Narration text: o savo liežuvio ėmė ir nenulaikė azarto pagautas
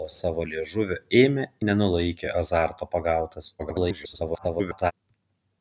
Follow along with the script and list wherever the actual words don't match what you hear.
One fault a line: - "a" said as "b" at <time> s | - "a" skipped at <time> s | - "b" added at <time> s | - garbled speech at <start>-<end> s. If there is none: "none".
- "ir" skipped at 1.4 s
- garbled speech at 3.6-4.9 s